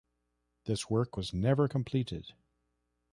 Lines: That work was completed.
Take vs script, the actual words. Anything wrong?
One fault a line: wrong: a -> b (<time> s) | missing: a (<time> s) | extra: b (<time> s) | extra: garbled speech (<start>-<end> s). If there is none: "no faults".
wrong: That -> This (0.7 s)
extra: never (1.3 s)